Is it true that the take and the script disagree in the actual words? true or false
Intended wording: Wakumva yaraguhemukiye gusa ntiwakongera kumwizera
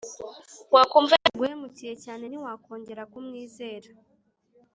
true